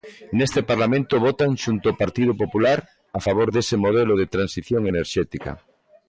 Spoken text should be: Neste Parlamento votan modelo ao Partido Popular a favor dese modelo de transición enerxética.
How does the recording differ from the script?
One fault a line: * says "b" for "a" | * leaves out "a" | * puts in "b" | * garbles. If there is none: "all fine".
* says "xunto" for "modelo"